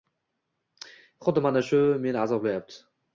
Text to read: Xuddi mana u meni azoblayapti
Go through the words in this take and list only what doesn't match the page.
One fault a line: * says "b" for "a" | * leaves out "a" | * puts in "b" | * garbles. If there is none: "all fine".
* says "shu" for "u"